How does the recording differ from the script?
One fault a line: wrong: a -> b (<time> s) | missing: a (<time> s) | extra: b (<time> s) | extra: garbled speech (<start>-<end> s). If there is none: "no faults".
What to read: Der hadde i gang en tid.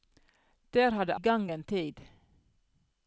no faults